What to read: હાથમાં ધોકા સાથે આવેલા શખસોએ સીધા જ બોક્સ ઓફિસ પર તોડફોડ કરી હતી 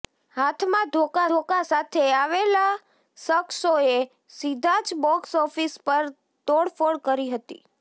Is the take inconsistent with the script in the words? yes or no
yes